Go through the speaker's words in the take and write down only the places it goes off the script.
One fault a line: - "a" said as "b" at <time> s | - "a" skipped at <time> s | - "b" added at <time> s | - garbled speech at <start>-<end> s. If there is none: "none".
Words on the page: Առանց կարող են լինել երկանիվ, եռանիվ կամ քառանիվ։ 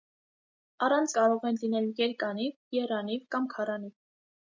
none